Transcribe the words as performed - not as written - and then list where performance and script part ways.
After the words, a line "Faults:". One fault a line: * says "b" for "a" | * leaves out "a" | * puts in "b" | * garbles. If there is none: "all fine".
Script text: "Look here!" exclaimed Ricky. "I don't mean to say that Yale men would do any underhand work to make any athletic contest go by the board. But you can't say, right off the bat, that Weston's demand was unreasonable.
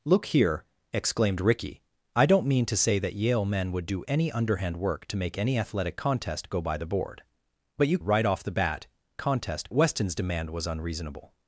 "Look here!" exclaimed Ricky. "I don't mean to say that Yale men would do any underhand work to make any athletic contest go by the board. But you right off the bat, contest Weston's demand was unreasonable.
Faults:
* leaves out "can't say"
* says "contest" for "that"